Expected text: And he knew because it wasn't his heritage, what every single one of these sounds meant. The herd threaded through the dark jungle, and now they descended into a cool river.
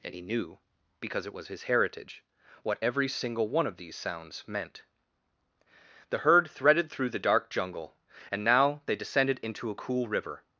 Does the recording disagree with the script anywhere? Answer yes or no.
yes